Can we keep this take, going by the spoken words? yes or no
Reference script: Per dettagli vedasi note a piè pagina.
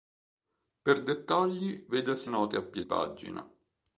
yes